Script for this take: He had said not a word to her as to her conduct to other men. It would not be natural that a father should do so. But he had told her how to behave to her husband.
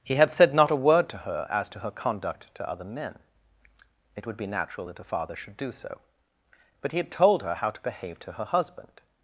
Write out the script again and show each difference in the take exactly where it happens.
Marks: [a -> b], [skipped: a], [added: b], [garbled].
He had said not a word to her as to her conduct to other men. It would [skipped: not] be natural that a father should do so. But he had told her how to behave to her husband.